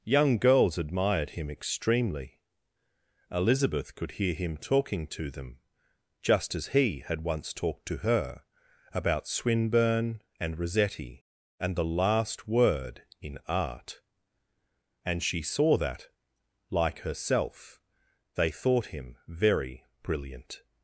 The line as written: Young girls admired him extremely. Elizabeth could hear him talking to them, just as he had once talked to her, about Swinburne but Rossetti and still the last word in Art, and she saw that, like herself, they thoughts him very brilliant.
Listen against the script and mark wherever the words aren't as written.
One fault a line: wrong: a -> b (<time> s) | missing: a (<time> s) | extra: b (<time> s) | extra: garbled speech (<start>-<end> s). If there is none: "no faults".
wrong: but -> and (10.4 s)
missing: still (11.8 s)
wrong: thoughts -> thought (18.5 s)